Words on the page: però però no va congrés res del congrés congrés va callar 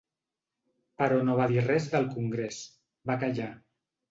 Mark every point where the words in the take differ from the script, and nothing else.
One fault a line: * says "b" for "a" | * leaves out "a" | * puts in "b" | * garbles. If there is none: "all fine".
* leaves out "però"
* says "dir" for "congrés"
* leaves out "congrés"